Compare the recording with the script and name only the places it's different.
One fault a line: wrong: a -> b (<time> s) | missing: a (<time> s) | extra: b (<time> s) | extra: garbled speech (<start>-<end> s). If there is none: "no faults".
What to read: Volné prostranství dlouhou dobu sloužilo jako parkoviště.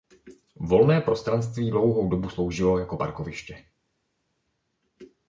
no faults